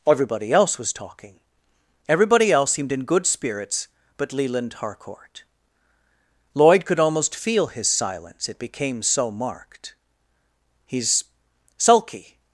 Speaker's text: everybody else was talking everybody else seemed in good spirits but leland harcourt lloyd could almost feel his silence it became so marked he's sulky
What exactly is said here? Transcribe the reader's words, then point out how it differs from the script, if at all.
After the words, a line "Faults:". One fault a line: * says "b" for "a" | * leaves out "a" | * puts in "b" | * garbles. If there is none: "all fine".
everybody else was talking everybody else seemed in good spirits but leland harcourt lloyd could almost feel his silence it became so marked he's sulky
Faults:
all fine